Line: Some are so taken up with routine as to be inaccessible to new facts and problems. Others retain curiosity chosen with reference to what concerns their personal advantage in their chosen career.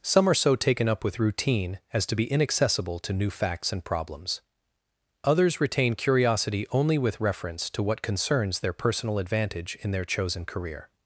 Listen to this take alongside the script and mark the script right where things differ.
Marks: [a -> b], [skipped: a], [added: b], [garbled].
Some are so taken up with routine as to be inaccessible to new facts and problems. Others retain curiosity [chosen -> only] with reference to what concerns their personal advantage in their chosen career.